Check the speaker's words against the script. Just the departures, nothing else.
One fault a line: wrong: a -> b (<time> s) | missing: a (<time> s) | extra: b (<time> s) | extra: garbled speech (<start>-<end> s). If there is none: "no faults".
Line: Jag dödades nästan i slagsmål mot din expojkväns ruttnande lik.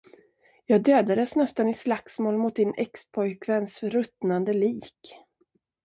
no faults